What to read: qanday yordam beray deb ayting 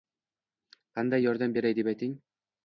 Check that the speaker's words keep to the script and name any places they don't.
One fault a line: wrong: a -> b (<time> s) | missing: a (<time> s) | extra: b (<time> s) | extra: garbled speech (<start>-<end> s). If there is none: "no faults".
no faults